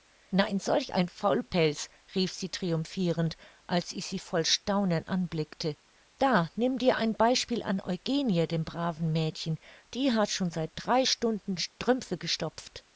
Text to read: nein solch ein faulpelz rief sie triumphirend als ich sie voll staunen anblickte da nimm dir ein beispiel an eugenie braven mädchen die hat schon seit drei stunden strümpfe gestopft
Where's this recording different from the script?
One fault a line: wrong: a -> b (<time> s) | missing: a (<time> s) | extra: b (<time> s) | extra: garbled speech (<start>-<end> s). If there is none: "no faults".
extra: dem (8.5 s)